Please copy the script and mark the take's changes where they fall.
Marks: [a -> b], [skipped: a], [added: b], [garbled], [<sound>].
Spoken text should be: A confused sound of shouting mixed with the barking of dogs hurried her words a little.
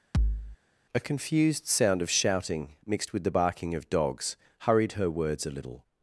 [thud] A confused sound of shouting mixed with the barking of dogs hurried her words a little.